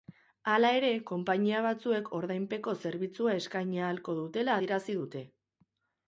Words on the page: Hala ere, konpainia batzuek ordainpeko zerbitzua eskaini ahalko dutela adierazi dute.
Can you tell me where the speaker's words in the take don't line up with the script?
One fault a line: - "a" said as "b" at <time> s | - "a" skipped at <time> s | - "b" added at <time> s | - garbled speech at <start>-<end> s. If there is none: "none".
none